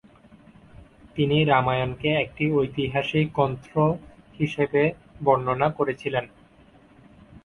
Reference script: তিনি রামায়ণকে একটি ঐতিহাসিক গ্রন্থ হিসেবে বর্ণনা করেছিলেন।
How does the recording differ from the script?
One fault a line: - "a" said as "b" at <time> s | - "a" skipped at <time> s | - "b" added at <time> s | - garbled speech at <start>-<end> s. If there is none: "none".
none